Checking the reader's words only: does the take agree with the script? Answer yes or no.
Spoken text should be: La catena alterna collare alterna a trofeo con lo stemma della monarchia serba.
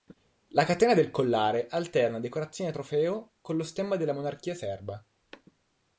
no